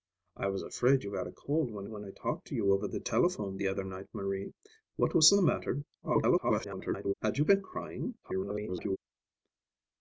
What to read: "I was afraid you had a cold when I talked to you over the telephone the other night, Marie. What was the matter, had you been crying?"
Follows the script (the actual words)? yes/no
no